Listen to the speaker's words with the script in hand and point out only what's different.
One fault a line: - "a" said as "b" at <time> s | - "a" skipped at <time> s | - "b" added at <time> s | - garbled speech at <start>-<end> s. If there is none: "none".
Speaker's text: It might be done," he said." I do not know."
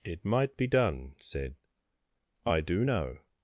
- "he" skipped at 1.1 s
- "not" skipped at 2.8 s